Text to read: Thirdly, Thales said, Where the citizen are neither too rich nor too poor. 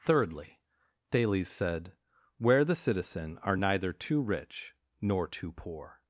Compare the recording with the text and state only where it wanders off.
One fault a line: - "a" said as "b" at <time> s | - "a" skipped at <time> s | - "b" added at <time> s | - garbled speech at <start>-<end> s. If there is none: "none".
none